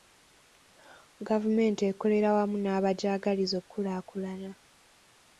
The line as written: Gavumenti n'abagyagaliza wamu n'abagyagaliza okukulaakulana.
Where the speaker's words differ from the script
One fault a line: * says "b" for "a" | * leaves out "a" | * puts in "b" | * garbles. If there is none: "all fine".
* says "ekolera" for "n'abagyagaliza"